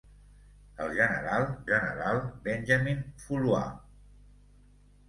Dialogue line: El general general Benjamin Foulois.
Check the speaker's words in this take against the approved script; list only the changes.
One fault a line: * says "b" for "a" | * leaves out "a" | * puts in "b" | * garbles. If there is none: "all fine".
all fine